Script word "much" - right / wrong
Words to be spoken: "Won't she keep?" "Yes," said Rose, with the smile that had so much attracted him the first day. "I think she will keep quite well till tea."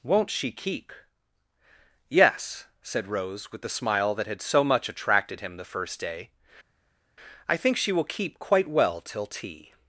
right